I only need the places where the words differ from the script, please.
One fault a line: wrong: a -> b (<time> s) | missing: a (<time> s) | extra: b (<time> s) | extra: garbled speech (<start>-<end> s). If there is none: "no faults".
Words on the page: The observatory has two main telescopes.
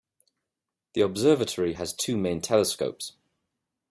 no faults